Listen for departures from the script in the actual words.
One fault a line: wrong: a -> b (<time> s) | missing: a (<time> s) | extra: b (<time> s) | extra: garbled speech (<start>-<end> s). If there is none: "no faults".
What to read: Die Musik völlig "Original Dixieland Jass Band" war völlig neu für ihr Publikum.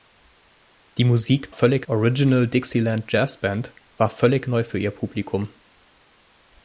no faults